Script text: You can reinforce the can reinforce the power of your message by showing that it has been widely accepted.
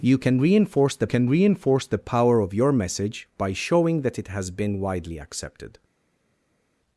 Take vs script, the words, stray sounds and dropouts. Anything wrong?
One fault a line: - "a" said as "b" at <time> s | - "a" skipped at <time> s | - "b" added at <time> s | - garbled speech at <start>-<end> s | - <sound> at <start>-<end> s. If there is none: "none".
none